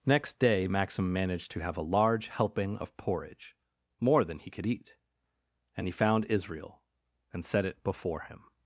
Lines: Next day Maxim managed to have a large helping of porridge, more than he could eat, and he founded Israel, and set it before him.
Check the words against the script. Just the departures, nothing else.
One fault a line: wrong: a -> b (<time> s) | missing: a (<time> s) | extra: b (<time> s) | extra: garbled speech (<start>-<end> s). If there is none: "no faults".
wrong: founded -> found (5.9 s)